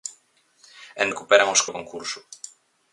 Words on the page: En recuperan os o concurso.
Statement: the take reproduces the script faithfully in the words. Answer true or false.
true